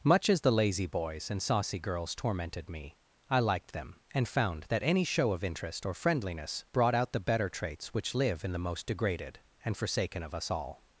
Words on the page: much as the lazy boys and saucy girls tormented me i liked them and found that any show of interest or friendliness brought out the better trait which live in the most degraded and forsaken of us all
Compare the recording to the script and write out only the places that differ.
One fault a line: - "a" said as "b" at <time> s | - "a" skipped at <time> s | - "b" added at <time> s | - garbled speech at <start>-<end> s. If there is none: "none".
- "trait" said as "traits" at 7.5 s